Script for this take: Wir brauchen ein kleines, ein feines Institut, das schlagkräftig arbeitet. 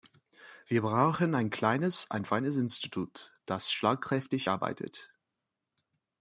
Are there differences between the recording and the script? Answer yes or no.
no